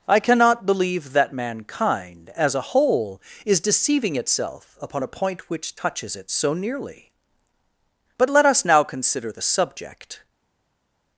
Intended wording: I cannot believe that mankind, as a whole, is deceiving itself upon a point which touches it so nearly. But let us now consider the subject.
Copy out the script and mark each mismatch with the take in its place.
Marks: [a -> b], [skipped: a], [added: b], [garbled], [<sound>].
I cannot believe that mankind, as a whole, is deceiving itself upon a point which touches it so nearly. But let us now consider the subject.